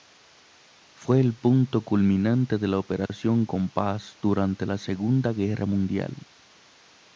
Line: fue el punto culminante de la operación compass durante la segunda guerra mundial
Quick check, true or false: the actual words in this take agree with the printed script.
true